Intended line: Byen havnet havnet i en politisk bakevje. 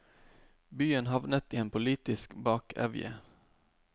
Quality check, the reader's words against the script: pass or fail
fail